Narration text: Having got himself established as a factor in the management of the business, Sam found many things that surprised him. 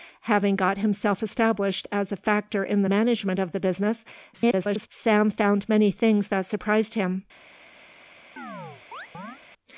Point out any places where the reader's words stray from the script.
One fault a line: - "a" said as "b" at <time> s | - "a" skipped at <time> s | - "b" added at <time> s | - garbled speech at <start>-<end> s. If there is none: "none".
- garbled speech at 4.3-4.9 s